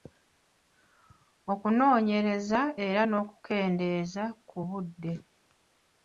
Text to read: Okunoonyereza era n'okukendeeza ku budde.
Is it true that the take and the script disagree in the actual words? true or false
false